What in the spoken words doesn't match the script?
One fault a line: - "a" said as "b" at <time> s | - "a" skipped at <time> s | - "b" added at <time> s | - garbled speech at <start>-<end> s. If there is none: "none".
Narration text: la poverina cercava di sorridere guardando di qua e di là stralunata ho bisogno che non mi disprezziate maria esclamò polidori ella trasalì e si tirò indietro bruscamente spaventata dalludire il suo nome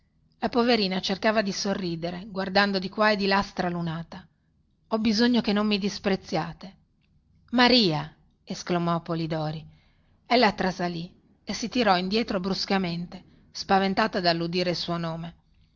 none